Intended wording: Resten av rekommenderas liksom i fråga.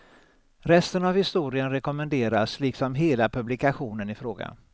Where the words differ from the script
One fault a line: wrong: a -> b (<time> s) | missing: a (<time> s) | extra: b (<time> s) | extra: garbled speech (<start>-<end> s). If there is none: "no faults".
extra: historien (1.1 s)
extra: hela publikationen (3.0 s)